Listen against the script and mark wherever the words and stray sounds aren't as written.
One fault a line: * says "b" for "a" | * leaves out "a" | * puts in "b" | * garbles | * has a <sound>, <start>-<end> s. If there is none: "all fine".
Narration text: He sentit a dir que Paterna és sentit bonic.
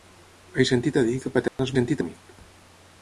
* has a dropout, 1.5-1.6 s